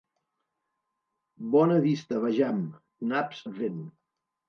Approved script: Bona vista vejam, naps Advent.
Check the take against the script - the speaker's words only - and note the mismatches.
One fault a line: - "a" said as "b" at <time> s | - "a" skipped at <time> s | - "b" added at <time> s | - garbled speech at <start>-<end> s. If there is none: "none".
none